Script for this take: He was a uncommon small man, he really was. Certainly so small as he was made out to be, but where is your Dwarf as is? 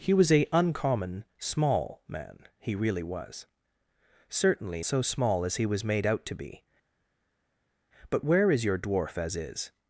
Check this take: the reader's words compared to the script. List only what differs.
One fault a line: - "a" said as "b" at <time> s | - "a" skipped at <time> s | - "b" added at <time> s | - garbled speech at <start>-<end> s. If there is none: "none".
none